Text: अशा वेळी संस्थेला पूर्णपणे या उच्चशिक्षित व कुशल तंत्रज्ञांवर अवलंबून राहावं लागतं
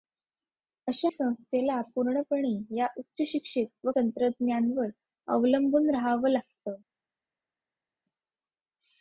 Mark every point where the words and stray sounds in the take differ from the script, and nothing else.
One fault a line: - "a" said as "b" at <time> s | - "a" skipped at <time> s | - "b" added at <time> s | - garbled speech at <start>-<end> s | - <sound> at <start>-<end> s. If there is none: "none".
- "वेळी" skipped at 1.1 s
- "कुशल" skipped at 3.9 s